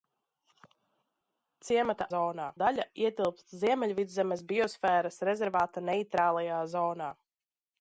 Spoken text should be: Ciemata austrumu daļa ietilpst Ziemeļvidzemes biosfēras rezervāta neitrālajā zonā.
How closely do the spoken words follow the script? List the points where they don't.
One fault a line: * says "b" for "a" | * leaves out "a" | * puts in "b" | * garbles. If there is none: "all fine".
* says "zonā" for "austrumu"